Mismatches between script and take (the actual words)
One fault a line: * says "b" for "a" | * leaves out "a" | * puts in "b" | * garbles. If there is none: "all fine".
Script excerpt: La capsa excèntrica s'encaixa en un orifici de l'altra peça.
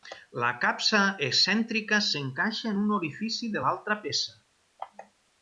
all fine